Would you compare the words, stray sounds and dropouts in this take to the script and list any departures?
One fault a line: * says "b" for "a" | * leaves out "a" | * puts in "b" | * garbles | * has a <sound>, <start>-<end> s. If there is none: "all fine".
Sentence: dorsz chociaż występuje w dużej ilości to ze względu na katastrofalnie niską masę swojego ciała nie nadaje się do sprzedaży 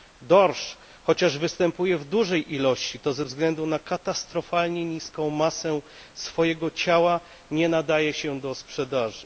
all fine